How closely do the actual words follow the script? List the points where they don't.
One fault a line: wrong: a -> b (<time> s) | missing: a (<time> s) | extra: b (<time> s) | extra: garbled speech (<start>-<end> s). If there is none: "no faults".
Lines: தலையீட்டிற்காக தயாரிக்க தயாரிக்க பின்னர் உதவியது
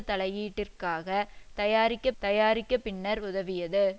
no faults